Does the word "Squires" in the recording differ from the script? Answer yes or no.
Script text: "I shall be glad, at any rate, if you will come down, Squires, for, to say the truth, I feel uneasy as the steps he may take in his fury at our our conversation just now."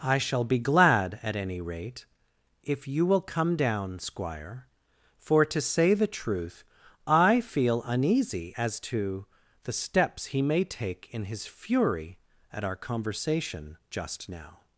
yes